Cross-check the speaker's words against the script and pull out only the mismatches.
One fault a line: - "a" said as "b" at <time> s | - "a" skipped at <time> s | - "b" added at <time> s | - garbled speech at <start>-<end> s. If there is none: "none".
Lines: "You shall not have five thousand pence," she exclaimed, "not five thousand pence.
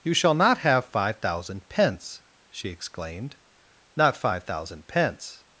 none